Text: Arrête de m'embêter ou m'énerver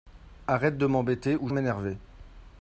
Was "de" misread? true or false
false